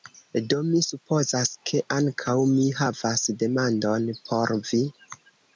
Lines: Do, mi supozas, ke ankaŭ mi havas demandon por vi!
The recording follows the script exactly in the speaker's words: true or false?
true